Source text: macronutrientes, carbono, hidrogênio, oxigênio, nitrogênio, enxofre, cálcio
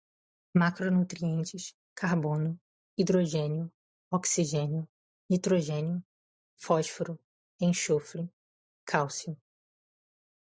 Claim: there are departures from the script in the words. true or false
true